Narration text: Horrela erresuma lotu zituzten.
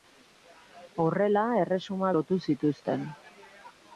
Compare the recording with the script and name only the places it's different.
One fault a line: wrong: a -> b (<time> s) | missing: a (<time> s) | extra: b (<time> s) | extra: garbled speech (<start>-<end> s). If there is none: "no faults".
no faults